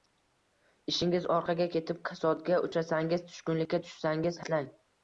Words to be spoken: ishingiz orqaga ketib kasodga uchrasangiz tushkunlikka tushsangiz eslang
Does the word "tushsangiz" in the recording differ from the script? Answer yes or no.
no